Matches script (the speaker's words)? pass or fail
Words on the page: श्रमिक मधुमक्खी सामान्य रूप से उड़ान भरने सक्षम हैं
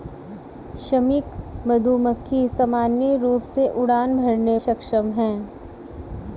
pass